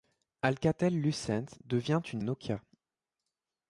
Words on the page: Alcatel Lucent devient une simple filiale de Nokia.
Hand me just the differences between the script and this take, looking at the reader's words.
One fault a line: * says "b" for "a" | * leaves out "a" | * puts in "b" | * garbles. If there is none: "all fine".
* leaves out "simple filiale de"